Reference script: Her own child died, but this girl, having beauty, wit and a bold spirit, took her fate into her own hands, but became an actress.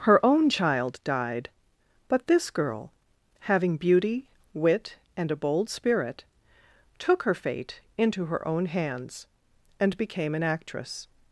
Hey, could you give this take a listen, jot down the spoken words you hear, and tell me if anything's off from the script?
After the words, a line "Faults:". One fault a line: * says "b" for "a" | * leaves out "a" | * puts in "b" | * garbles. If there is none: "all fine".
Her own child died, but this girl, having beauty, wit and a bold spirit, took her fate into her own hands, and became an actress.
Faults:
* says "and" for "but"